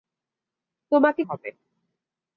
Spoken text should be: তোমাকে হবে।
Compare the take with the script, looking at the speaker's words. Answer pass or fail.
pass